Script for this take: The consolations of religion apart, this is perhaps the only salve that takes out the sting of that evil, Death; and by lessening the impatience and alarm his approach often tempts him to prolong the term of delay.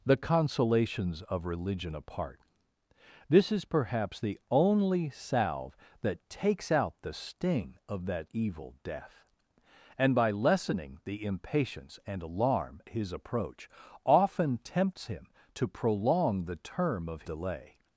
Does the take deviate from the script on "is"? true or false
false